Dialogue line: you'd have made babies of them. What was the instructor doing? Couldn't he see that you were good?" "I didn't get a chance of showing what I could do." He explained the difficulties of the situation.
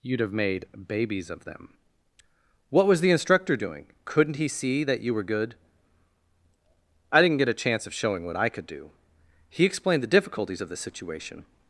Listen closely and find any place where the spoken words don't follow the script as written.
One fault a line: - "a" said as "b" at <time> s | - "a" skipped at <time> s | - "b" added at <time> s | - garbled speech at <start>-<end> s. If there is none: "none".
none